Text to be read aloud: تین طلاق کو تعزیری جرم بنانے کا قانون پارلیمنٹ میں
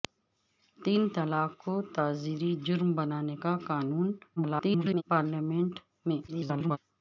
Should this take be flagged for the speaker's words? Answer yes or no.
yes